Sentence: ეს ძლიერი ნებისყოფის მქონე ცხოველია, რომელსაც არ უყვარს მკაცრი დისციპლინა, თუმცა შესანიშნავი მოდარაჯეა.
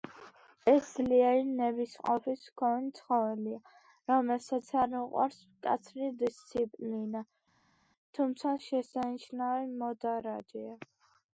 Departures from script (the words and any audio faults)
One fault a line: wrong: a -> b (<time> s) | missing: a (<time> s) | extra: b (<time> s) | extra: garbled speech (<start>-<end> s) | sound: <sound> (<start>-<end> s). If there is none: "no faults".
no faults